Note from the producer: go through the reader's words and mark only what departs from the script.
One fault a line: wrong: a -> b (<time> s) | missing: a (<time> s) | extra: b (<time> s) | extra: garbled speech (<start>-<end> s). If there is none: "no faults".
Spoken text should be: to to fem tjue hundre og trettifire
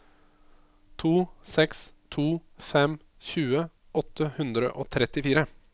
extra: seks (1.6 s)
extra: åtte (4.0 s)